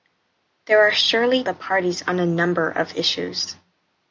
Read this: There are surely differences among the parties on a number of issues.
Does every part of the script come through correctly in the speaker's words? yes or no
no